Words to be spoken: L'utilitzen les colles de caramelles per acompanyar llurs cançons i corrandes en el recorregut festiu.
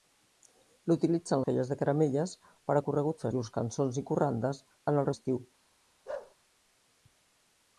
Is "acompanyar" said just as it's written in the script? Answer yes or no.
no